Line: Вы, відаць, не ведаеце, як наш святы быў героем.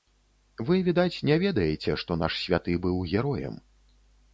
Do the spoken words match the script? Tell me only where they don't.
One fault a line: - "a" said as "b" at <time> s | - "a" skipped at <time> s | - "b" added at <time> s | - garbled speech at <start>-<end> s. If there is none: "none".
- "як" said as "што" at 2.0 s